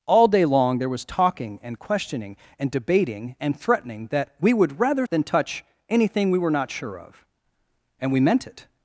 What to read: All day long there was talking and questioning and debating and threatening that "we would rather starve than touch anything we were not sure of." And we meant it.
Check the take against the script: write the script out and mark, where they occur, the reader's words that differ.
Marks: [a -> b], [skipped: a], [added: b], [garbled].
All day long there was talking and questioning and debating and threatening that "we would rather [skipped: starve] than touch anything we were not sure of." And we meant it.